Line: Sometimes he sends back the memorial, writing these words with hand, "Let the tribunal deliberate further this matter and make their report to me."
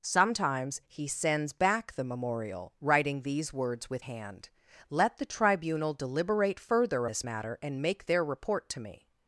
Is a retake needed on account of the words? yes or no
no